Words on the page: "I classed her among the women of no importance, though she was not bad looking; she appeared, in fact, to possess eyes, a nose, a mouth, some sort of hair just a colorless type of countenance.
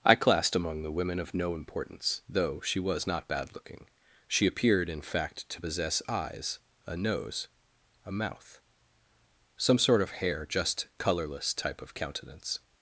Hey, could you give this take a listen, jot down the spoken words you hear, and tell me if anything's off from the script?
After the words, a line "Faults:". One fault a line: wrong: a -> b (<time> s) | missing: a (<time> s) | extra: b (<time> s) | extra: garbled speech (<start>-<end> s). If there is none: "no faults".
"I classed among the women of no importance, though she was not bad looking; she appeared, in fact, to possess eyes, a nose, a mouth, some sort of hair just colorless type of countenance.
Faults:
missing: her (0.6 s)
missing: a (10.9 s)